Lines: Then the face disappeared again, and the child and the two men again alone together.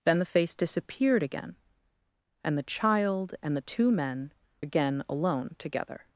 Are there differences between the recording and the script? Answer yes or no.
no